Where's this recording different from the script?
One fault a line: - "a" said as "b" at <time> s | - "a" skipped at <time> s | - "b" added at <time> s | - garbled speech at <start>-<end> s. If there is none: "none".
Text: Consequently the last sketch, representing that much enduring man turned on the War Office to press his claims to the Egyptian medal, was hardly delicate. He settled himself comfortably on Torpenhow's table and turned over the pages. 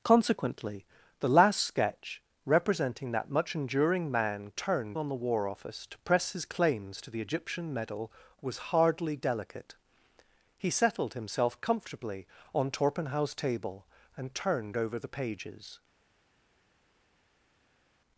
none